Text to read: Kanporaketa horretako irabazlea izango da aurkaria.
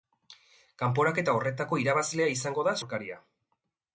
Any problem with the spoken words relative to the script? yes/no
no